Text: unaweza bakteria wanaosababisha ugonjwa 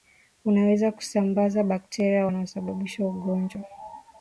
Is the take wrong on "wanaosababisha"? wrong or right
right